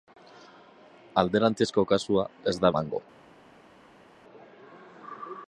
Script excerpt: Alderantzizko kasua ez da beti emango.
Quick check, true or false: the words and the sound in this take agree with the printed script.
false